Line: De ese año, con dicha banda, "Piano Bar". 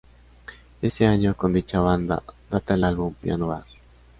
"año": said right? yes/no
yes